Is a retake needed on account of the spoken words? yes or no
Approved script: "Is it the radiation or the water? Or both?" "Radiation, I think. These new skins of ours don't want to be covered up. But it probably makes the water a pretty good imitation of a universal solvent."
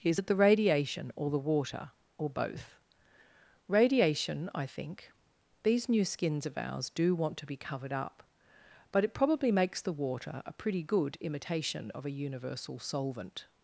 yes